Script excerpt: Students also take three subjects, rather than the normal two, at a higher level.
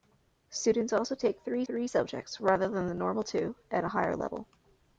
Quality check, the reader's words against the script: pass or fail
fail